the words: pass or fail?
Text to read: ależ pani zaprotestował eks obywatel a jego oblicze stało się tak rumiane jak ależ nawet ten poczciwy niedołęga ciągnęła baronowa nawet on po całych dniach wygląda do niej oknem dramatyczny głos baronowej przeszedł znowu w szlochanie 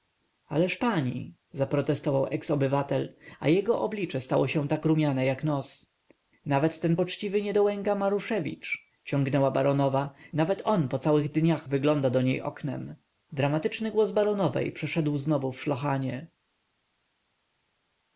fail